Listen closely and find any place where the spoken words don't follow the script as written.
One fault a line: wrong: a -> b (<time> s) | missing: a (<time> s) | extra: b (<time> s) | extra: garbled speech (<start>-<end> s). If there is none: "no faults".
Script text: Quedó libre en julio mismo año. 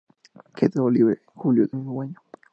no faults